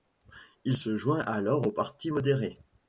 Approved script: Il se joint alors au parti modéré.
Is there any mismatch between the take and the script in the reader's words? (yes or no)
no